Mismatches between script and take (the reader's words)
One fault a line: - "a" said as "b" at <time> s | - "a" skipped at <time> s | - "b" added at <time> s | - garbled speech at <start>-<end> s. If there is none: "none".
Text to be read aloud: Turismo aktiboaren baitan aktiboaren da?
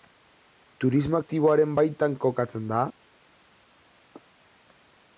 - "aktiboaren" said as "kokatzen" at 2.3 s